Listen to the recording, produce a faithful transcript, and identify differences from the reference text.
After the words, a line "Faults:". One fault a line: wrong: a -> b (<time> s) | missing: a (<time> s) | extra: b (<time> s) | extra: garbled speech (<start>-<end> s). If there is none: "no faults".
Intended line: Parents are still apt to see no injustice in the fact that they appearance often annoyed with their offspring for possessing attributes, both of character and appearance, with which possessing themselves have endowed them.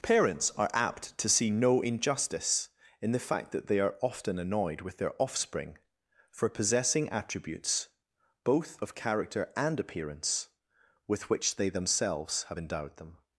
Parents are apt to see no injustice in the fact that they are often annoyed with their offspring for possessing attributes, both of character and appearance, with which they themselves have endowed them.
Faults:
missing: still (0.7 s)
wrong: appearance -> are (3.8 s)
wrong: possessing -> they (11.6 s)